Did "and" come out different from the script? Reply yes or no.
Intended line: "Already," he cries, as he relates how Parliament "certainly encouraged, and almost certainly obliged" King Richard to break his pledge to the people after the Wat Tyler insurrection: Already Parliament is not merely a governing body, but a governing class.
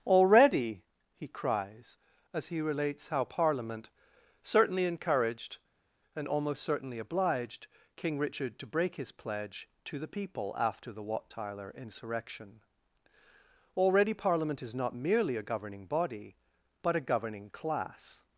no